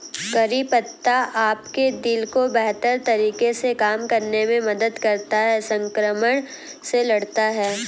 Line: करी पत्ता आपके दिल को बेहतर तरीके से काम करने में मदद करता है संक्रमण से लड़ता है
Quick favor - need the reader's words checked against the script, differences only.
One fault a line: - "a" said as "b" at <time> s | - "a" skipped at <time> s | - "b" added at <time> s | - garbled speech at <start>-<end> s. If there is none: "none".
none